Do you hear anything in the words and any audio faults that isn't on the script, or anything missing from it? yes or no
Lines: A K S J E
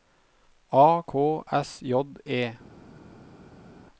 no